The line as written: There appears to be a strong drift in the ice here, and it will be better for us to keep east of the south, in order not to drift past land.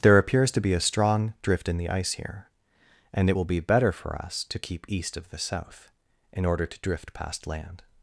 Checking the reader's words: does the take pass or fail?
fail